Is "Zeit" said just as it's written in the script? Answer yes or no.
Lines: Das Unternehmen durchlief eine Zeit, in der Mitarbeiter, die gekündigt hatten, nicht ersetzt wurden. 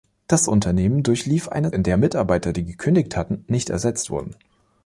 no